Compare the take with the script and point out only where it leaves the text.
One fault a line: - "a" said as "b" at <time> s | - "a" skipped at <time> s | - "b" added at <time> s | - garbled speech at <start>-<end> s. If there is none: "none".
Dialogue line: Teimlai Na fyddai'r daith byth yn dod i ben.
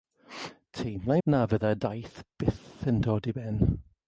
none